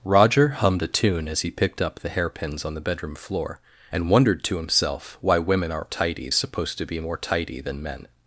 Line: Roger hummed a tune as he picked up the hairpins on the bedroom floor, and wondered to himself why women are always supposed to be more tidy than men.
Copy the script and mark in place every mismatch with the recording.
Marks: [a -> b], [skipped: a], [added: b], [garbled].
Roger hummed a tune as he picked up the hairpins on the bedroom floor, and wondered to himself why women are [always -> tidy] supposed to be more tidy than men.